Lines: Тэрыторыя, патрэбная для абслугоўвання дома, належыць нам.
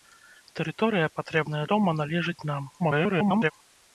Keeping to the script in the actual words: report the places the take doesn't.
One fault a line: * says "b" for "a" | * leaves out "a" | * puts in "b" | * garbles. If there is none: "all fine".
* leaves out "для абслугоўвання"
* garbles